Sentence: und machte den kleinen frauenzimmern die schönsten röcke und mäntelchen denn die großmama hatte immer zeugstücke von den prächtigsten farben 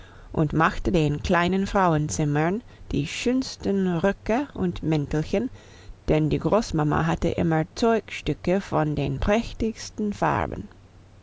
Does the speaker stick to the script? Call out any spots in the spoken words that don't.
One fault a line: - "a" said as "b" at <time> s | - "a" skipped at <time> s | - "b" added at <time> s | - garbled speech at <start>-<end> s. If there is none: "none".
none